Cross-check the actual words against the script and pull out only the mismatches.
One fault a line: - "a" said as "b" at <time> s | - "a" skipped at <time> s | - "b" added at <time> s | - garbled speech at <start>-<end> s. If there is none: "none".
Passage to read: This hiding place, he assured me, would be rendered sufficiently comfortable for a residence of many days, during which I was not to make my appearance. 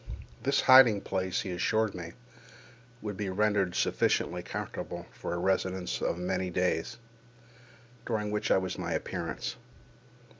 - "not to make" skipped at 8.8 s